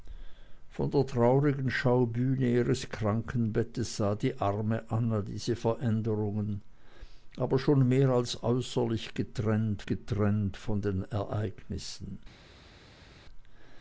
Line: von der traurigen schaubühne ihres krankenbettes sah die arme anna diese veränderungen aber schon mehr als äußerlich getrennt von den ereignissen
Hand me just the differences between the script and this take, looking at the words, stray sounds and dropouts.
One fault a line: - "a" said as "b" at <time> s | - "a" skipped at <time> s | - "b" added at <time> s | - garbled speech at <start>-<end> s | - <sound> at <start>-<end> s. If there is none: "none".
- "getrennt" added at 9.8 s